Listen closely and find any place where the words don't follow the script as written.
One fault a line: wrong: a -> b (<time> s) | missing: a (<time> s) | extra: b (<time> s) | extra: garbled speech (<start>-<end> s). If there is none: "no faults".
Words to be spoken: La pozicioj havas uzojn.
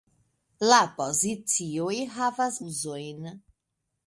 no faults